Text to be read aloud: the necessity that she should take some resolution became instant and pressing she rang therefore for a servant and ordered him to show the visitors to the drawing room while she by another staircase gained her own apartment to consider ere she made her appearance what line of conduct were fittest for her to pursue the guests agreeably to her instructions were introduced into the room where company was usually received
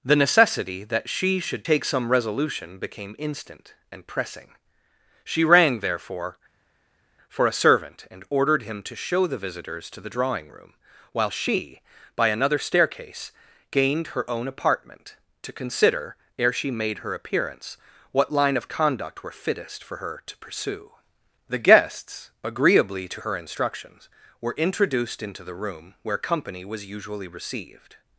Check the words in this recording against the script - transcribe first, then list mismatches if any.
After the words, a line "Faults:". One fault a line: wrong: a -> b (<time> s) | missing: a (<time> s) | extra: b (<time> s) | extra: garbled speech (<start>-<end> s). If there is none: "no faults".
the necessity that she should take some resolution became instant and pressing she rang therefore for a servant and ordered him to show the visitors to the drawing room while she by another staircase gained her own apartment to consider ere she made her appearance what line of conduct were fittest for her to pursue the guests agreeably to her instructions were introduced into the room where company was usually received
Faults:
no faults